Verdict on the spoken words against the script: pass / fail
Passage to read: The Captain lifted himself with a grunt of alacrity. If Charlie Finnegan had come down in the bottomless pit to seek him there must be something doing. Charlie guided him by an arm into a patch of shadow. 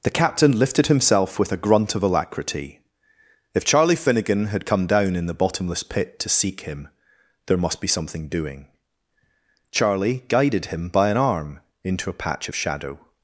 pass